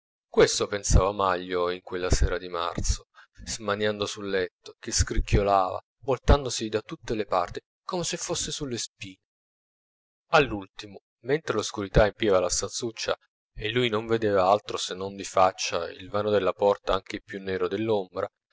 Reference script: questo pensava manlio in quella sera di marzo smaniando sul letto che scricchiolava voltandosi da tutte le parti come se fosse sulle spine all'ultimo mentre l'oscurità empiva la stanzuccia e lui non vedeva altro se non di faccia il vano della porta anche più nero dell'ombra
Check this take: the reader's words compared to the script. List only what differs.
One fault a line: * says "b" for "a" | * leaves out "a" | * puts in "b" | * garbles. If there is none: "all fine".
all fine